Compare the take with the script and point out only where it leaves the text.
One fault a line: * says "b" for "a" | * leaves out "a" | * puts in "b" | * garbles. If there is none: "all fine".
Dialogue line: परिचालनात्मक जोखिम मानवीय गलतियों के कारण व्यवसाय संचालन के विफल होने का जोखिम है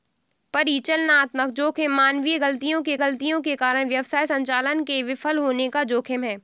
* puts in "गलतियों के"